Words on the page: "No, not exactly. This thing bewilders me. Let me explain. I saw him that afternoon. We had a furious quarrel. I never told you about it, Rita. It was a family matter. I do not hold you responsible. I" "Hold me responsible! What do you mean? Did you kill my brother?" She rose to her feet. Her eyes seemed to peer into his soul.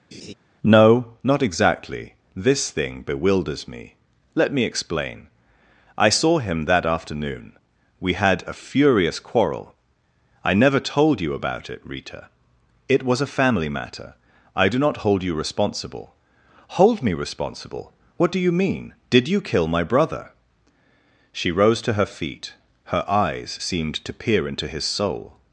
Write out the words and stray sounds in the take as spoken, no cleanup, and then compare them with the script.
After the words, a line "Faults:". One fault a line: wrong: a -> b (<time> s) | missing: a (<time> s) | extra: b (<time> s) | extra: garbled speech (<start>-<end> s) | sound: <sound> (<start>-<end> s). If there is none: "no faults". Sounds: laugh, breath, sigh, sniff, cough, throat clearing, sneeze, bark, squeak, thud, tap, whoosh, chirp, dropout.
"No, not exactly. This thing bewilders me. Let me explain. I saw him that afternoon. We had a furious quarrel. I never told you about it, Rita. It was a family matter. I do not hold you responsible" "Hold me responsible! What do you mean? Did you kill my brother?" She rose to her feet. Her eyes seemed to peer into his soul.
Faults:
sound: laugh (0.1-0.3 s)
missing: I (16.1 s)